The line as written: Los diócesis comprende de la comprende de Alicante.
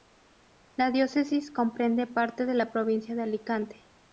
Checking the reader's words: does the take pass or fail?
fail